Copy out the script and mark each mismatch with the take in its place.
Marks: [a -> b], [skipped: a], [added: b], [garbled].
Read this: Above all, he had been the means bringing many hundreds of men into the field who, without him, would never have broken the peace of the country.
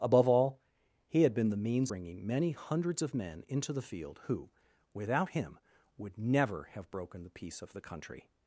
Above all, he had been the means bringing many hundreds of men into the field who, without him, would never have broken the peace of the country.